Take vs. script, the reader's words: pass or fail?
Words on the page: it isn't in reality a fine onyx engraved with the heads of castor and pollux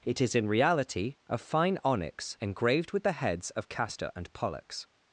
fail